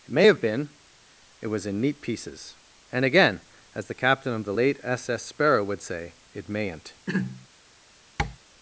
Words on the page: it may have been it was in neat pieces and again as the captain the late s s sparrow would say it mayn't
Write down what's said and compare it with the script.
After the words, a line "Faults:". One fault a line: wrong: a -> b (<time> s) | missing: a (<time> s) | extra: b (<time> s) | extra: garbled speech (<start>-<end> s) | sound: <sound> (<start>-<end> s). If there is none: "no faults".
it may have been it was in neat pieces and again as the captain of the late s s sparrow would say it mayn't
Faults:
extra: of (4.3 s)
sound: throat clearing (7.1-7.5 s)
sound: tap (8.2-8.4 s)